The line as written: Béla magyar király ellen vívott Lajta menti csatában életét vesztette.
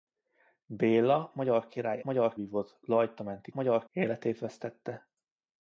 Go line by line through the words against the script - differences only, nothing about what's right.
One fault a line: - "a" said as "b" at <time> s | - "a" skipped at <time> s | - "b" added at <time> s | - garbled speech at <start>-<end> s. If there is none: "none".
- "ellen" said as "magyar" at 2.0 s
- "csatában" said as "magyar" at 3.5 s